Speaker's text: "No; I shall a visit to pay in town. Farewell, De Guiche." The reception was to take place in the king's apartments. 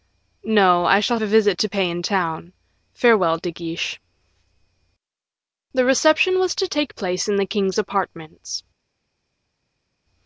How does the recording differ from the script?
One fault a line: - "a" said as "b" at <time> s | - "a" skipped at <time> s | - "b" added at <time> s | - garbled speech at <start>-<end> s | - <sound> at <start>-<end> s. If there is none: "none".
none